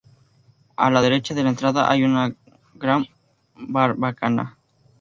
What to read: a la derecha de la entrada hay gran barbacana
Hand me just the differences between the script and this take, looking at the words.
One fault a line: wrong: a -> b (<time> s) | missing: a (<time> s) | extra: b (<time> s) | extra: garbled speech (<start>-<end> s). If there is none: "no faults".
extra: una (2.0 s)